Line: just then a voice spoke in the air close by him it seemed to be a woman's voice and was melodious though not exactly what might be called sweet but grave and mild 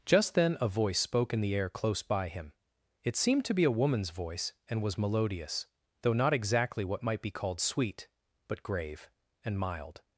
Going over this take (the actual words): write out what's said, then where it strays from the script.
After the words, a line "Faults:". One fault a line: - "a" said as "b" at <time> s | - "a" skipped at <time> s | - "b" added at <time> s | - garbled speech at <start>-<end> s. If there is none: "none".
just then a voice spoke in the air close by him it seemed to be a woman's voice and was melodious though not exactly what might be called sweet but grave and mild
Faults:
none